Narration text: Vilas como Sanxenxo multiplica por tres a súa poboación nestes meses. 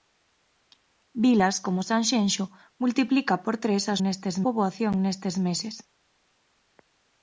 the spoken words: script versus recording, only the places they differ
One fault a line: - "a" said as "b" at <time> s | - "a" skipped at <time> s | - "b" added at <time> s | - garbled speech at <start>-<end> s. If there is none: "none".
- "súa" said as "nestes" at 4.0 s